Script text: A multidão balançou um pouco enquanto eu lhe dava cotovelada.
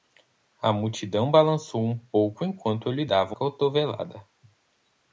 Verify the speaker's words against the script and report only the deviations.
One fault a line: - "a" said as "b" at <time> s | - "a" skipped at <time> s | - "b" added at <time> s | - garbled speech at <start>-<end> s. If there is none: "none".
none